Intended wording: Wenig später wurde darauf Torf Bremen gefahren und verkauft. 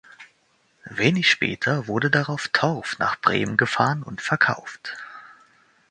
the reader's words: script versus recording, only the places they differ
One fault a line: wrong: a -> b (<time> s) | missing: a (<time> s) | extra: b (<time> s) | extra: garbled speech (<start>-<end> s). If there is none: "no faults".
extra: nach (3.0 s)